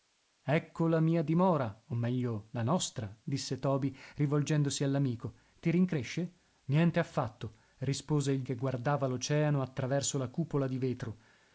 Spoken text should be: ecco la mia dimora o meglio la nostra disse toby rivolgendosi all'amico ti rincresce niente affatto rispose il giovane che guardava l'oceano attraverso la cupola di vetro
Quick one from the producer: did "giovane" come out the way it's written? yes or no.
no